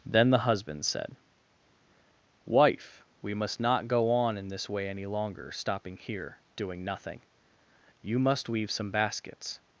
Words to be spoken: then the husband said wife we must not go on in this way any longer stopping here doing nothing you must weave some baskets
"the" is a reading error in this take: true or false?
false